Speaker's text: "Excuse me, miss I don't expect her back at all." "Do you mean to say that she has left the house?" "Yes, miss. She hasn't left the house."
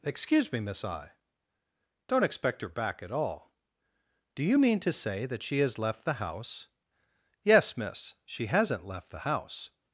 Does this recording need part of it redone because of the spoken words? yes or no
no